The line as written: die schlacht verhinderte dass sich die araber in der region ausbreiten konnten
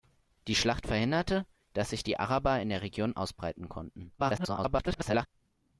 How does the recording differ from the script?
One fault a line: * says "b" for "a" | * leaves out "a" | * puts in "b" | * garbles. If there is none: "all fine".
* garbles